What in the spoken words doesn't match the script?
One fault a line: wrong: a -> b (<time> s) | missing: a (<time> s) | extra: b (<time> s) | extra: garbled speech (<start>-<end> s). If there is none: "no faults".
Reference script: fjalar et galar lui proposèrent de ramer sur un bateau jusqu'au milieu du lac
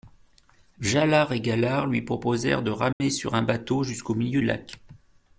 missing: du (4.4 s)